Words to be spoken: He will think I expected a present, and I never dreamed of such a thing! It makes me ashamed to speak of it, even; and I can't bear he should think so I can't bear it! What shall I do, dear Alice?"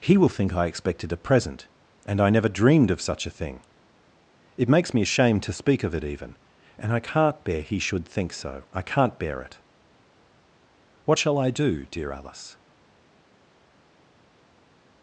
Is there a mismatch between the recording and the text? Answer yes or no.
no